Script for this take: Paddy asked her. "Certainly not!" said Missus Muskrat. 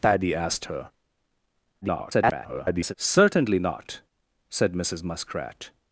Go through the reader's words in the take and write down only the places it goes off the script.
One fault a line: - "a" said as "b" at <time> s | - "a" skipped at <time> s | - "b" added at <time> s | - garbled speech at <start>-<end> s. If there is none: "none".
- garbled speech at 1.8-2.9 s